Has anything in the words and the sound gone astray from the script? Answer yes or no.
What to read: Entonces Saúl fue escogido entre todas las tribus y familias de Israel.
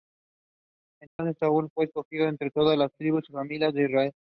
yes